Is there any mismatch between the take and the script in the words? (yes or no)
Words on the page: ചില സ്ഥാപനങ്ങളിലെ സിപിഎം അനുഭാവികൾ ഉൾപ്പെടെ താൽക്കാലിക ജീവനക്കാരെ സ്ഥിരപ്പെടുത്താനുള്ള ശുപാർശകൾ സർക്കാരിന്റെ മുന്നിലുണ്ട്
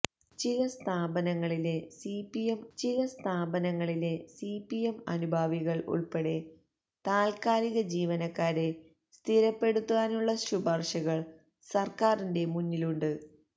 yes